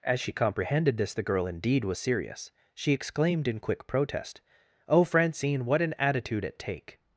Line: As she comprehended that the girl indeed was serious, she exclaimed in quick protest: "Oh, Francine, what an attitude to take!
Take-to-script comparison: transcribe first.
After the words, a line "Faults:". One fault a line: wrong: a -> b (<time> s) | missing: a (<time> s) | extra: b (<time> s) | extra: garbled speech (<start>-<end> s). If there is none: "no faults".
As she comprehended this the girl indeed was serious, she exclaimed in quick protest: "Oh, Francine, what an attitude at take!
Faults:
wrong: that -> this (1.0 s)
wrong: to -> at (6.5 s)